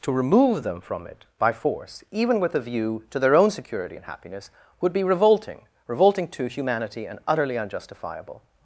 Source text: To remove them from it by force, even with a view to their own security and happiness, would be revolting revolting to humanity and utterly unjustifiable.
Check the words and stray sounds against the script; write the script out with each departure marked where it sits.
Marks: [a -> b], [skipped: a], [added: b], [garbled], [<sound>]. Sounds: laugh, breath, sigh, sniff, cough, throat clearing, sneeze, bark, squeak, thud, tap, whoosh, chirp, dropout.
To remove them from it by force, even with a view to their own security and happiness, would be revolting revolting to humanity and utterly unjustifiable.